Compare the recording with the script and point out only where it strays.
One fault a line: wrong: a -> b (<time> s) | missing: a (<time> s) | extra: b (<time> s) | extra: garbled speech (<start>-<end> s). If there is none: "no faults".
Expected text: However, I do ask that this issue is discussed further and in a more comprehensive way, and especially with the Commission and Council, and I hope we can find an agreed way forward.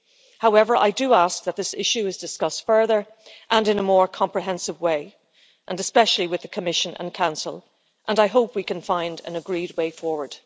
no faults